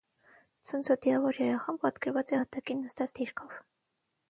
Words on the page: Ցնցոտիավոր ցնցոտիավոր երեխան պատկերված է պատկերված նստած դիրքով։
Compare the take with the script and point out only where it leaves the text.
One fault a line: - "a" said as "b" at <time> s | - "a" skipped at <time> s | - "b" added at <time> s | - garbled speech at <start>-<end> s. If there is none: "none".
- "ցնցոտիավոր" skipped at 1.4 s
- "պատկերված" said as "հատակին" at 2.5 s